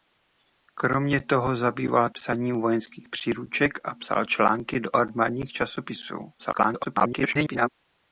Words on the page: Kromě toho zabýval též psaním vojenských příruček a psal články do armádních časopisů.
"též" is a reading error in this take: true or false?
true